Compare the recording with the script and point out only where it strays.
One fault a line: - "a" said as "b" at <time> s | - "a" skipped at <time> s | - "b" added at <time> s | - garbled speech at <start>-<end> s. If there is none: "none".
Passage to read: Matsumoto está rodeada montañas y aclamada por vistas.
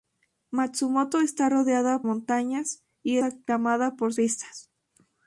none